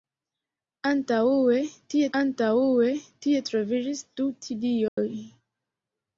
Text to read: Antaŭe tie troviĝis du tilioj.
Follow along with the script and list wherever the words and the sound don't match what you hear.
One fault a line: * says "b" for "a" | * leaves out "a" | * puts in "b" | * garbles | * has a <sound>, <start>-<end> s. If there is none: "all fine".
* puts in "antaŭe tie"
* has a dropout, 4.9-5.0 s